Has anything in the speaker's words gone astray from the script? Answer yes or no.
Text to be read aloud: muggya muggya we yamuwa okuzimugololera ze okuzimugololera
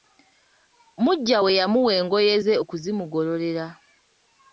yes